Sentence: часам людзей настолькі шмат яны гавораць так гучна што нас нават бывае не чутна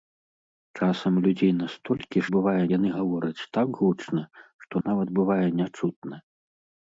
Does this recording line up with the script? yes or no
no